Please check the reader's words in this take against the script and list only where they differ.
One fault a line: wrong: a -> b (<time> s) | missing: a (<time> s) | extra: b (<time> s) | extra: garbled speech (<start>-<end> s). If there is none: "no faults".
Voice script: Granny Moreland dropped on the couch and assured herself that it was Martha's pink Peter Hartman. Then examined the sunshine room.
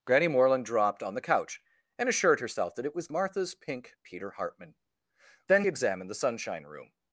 no faults